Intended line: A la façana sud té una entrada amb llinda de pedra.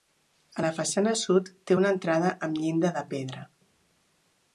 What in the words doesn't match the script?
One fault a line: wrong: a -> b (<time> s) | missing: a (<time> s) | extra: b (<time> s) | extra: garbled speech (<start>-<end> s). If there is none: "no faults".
no faults